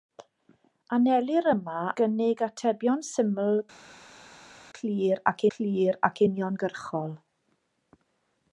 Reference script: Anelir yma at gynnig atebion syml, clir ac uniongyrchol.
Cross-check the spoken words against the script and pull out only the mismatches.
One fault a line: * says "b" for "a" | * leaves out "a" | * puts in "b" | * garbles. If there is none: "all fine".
* leaves out "at"
* puts in "clir ac"